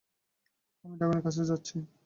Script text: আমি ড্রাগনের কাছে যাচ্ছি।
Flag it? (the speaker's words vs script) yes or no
no